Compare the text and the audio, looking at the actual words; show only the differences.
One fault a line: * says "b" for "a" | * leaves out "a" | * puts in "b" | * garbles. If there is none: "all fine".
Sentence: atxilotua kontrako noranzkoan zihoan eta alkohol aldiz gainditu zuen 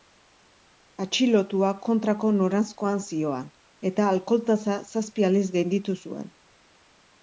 * puts in "tasa zazpi"